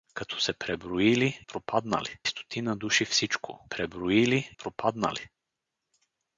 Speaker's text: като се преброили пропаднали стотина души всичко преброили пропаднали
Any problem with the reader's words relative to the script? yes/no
no